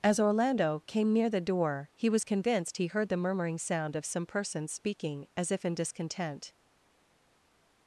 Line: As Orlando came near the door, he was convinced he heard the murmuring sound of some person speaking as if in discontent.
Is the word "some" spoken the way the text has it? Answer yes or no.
yes